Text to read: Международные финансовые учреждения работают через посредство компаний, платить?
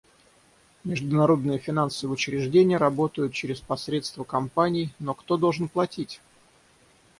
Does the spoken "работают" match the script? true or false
true